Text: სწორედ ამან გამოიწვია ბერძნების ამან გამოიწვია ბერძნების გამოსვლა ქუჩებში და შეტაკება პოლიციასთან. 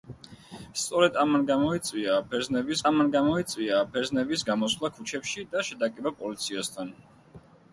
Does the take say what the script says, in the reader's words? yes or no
yes